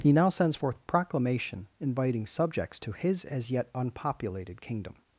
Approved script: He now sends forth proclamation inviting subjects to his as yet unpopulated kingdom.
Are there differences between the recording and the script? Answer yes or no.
no